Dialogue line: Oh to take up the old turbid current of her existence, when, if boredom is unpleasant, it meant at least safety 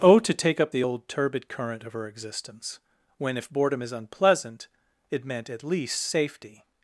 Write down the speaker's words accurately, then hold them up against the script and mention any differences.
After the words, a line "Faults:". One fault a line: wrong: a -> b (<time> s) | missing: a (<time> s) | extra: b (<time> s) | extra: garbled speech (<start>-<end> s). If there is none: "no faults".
Oh to take up the old turbid current of her existence, when, if boredom is unpleasant, it meant at least safety
Faults:
no faults